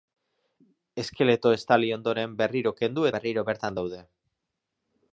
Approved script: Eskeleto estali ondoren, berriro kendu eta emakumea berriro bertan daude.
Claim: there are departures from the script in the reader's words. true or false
true